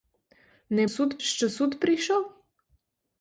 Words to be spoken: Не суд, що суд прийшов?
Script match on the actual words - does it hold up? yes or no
yes